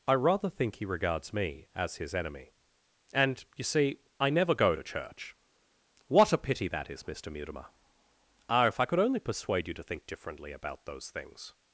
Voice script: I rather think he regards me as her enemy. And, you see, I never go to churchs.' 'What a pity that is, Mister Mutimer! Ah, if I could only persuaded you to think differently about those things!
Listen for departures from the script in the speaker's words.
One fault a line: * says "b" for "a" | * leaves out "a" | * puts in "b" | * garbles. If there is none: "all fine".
* says "his" for "her"
* says "church" for "churchs"
* says "persuade" for "persuaded"